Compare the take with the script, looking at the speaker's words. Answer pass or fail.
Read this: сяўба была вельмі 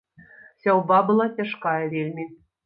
fail